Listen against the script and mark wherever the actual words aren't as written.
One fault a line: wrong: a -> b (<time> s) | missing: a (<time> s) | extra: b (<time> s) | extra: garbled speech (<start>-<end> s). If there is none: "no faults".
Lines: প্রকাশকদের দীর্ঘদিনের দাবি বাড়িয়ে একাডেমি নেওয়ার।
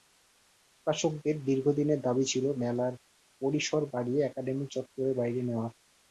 extra: ছিল মেলার পরিসর (2.3 s)
extra: চত্বরের বাইরে (4.7 s)